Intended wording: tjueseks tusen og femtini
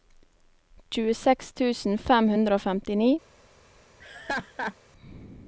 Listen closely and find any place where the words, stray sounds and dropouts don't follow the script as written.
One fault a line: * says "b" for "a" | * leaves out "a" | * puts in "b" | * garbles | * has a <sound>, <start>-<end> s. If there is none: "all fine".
* puts in "fem hundre"
* has a laugh, 4.0-4.8 s